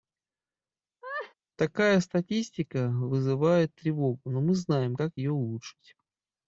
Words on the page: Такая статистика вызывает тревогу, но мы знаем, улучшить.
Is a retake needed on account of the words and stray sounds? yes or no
yes